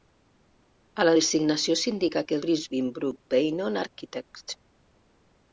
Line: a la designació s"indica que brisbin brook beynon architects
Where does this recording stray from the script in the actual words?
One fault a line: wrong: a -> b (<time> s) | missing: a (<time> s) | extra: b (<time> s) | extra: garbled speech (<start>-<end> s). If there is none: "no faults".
no faults